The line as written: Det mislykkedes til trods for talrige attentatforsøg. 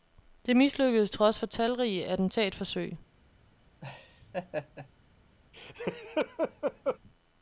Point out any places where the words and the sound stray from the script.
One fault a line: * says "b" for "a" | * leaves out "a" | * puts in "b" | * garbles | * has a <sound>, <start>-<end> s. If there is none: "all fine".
* leaves out "til"
* has a laugh, 3.8-4.9 s
* has a laugh, 5.5-7.0 s